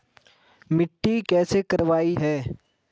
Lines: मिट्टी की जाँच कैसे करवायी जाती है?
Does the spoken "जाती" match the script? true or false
false